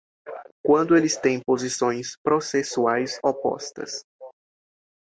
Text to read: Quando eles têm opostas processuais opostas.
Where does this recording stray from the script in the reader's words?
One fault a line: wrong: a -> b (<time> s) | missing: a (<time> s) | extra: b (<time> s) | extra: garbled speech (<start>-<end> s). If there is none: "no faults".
wrong: opostas -> posições (1.4 s)